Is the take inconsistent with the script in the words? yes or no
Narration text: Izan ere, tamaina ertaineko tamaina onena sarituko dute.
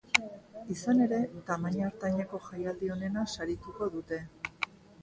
yes